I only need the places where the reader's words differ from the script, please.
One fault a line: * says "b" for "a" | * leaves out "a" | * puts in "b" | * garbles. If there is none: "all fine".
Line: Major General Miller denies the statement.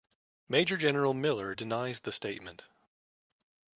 all fine